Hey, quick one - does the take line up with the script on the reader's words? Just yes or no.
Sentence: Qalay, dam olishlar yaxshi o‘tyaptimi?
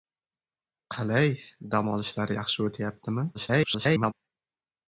no